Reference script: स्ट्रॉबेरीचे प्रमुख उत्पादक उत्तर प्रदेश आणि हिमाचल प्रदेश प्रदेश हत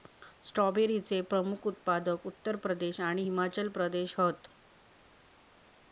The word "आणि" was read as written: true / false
true